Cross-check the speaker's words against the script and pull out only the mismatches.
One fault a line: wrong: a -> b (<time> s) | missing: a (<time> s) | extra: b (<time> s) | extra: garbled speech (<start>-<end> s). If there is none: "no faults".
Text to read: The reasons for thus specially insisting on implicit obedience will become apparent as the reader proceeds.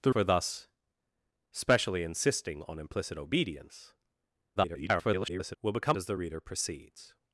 missing: reasons (0.1 s)
extra: garbled speech (4.6-5.6 s)
missing: apparent (6.0 s)